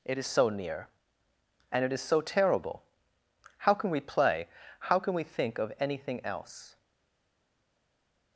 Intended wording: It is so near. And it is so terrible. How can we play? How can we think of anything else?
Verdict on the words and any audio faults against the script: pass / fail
pass